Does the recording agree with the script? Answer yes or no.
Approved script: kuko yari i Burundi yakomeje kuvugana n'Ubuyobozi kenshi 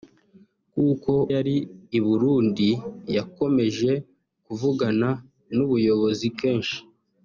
yes